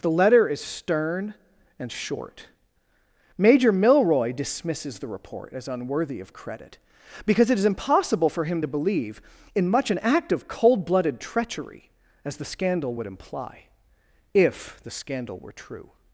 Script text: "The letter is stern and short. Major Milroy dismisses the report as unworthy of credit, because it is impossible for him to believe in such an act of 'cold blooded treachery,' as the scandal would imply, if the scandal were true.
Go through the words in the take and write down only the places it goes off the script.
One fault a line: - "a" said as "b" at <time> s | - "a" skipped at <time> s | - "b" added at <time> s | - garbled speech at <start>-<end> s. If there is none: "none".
- "such" said as "much" at 9.7 s